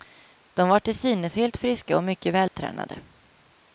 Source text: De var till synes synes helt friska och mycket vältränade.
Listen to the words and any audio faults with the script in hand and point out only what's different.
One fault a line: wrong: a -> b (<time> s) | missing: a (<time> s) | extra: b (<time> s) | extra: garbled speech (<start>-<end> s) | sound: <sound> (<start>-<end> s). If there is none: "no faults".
missing: synes (1.4 s)
sound: dropout (2.5-2.5 s)